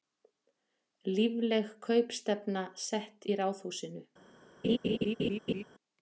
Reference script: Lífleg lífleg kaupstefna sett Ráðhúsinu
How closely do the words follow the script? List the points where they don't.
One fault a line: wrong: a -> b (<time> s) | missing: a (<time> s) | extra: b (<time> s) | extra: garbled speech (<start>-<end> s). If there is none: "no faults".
missing: lífleg (1.7 s)
extra: í (3.3 s)